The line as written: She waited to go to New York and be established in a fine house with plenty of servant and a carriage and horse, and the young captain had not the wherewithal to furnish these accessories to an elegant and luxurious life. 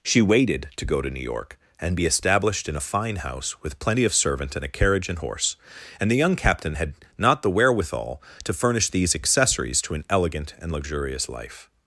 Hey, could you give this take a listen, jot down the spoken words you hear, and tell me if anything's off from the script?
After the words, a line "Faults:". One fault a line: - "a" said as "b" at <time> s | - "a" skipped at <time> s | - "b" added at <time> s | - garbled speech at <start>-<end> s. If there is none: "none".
She waited to go to New York and be established in a fine house with plenty of servant and a carriage and horse, and the young captain had not the wherewithal to furnish these accessories to an elegant and luxurious life.
Faults:
none